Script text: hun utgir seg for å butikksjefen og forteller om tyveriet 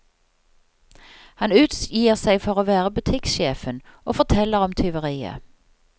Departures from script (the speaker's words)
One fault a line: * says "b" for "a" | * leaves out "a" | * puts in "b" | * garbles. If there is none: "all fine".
* says "han" for "hun"
* puts in "være"